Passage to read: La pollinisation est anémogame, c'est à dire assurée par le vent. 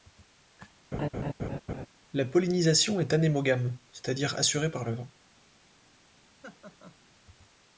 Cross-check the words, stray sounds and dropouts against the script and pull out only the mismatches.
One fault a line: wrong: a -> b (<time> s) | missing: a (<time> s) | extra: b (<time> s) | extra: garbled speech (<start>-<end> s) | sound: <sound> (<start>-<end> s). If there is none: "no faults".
sound: laugh (0.9-1.9 s)
sound: laugh (6.4-7.0 s)